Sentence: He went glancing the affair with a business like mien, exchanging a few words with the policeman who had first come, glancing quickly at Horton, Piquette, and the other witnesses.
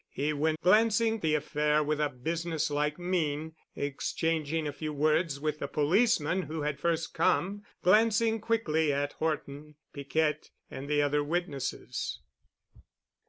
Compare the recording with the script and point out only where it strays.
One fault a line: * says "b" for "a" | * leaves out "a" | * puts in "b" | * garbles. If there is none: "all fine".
all fine